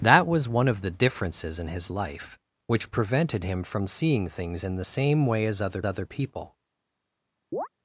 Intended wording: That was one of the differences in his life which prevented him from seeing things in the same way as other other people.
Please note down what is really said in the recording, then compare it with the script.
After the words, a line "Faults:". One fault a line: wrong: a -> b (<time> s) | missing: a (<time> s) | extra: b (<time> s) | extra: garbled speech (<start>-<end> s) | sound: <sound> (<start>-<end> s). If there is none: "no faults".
That was one of the differences in his life which prevented him from seeing things in the same way as other other people.
Faults:
sound: chirp (7.5-7.7 s)